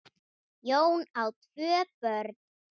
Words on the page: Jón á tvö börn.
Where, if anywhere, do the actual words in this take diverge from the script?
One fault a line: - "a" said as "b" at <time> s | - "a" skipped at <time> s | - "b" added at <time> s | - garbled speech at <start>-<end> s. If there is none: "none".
none